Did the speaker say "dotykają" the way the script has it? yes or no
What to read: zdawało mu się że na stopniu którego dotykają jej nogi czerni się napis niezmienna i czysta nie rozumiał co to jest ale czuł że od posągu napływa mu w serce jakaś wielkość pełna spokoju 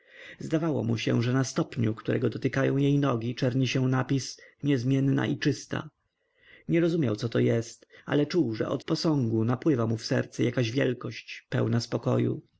yes